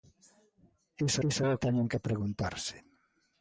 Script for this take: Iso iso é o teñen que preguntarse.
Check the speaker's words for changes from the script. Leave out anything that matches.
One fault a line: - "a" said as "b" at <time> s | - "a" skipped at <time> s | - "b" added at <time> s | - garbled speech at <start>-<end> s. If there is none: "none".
none